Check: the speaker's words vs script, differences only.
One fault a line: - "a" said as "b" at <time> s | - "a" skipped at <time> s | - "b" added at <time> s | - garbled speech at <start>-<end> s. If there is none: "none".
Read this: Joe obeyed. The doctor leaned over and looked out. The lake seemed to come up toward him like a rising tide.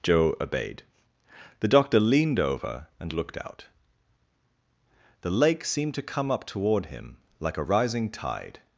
none